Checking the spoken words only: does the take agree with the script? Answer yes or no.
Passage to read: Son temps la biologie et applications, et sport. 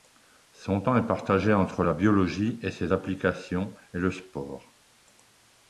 no